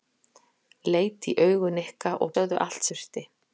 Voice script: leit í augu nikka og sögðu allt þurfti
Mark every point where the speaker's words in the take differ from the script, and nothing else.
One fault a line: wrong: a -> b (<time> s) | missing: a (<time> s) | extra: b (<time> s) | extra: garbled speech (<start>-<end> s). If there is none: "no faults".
no faults